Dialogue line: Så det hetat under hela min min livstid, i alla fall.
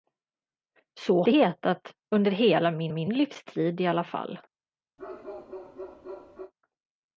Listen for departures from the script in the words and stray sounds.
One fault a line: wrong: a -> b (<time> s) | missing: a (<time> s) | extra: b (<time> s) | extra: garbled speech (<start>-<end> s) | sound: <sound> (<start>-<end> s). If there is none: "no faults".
sound: bark (5.0-6.5 s)